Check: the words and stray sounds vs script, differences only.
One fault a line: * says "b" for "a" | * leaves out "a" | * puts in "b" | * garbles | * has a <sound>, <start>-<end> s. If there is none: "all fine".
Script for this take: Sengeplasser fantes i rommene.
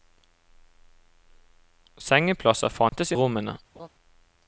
* has a dropout, 2.9-2.9 s
* has a laugh, 3.7-3.9 s